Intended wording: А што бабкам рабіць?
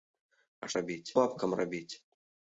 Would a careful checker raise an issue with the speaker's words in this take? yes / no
yes